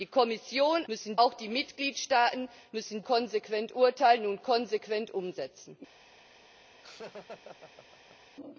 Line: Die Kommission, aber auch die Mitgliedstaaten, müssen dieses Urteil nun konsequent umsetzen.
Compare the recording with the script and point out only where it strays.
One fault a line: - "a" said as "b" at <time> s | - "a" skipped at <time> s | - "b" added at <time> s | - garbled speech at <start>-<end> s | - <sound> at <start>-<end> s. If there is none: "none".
- "aber" said as "müssen" at 0.9 s
- "dieses" said as "konsequent" at 3.0 s
- laugh at 6.8-8.3 s